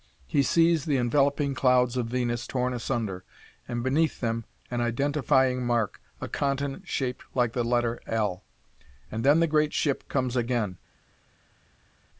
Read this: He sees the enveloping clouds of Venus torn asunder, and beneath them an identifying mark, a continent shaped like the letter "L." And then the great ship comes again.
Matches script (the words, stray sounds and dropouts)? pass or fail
pass